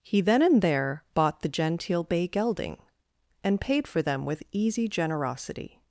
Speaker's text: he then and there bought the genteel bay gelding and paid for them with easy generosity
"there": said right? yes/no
yes